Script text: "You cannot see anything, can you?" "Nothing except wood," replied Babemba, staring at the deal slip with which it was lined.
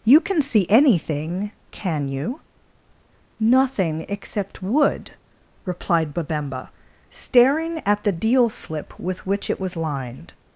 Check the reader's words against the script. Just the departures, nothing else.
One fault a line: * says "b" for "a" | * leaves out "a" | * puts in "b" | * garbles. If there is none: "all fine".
* says "can" for "cannot"